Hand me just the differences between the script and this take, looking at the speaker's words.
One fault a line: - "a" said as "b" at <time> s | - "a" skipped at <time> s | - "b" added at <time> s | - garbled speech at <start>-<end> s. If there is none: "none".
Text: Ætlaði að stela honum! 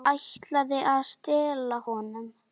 none